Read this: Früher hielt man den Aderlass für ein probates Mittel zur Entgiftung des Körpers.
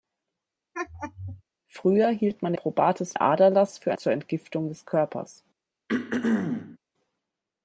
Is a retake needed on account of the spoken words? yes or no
yes